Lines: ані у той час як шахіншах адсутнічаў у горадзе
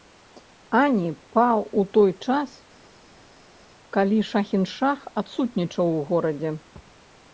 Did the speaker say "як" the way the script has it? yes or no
no